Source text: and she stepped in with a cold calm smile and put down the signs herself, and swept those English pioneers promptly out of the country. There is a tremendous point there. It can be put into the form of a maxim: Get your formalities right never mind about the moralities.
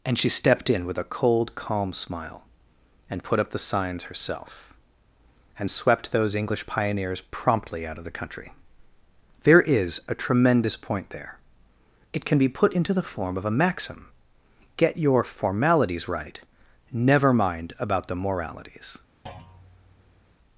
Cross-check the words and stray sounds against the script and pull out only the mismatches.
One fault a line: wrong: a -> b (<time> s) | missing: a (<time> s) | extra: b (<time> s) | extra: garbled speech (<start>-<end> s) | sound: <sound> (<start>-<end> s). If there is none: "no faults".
wrong: down -> up (3.4 s)
sound: thud (19.3-20.4 s)